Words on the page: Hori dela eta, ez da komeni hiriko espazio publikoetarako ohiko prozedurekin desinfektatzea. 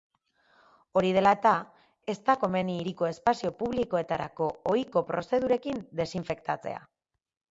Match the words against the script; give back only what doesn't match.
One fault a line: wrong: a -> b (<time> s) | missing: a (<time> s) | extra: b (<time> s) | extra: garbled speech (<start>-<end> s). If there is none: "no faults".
no faults